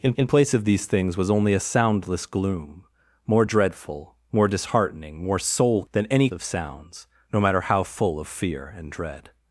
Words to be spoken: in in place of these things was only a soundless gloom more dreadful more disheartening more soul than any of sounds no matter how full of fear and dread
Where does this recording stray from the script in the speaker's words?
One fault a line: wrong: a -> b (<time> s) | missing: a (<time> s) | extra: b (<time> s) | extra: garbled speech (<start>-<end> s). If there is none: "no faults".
no faults